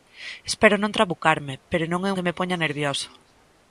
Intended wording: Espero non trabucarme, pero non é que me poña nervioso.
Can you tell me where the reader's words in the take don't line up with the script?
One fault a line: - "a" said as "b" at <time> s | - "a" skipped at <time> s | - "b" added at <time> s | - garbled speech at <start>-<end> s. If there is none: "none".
none